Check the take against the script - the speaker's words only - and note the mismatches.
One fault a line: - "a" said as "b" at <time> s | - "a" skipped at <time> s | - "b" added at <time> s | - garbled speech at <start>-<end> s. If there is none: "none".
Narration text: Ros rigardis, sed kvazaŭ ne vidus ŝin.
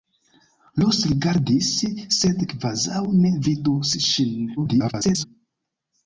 - garbled speech at 4.6-5.3 s